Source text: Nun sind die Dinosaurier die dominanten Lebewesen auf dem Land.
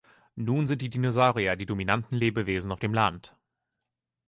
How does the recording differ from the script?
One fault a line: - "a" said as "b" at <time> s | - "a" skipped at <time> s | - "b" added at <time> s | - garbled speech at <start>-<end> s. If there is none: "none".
none